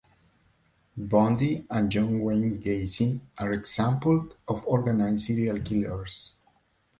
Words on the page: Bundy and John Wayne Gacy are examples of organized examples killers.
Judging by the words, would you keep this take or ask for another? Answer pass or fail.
fail